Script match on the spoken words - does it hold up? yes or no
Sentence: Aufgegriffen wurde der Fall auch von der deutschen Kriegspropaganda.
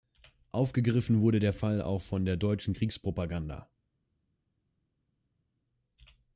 yes